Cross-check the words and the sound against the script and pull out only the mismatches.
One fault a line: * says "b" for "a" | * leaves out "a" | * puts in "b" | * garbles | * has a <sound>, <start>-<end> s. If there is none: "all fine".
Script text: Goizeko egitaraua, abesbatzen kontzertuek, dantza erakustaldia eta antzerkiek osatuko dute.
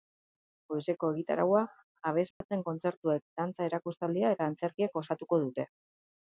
* has a dropout, 2.3-2.4 s